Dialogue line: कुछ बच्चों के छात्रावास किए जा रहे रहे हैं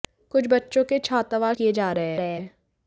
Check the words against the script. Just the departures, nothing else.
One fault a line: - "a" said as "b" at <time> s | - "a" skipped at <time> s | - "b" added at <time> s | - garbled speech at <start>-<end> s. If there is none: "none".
none